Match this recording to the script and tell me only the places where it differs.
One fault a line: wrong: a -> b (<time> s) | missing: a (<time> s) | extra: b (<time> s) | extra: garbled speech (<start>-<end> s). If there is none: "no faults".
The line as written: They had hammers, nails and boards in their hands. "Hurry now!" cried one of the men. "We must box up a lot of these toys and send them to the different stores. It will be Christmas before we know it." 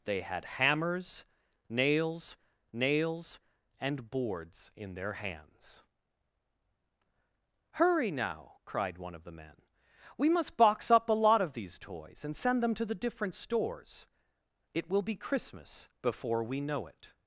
extra: nails (2.7 s)